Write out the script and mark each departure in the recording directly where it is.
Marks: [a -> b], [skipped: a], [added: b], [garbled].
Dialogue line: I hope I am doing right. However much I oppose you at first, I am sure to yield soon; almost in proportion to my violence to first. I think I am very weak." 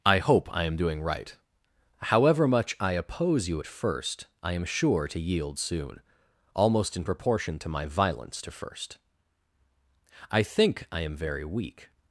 I hope I am doing right. However much I oppose you at first, I am sure to yield soon; almost in proportion to my violence to first. I think I am very weak."